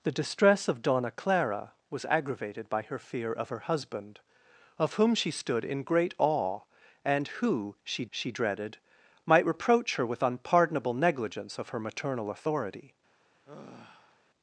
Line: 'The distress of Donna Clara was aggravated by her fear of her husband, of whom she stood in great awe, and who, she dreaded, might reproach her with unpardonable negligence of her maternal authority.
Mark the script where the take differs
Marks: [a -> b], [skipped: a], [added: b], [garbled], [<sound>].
'The distress of Donna Clara was aggravated by her fear of her husband, of whom she stood in great awe, and who, she [added: she] dreaded, might reproach her with unpardonable negligence of her maternal authority. [sigh]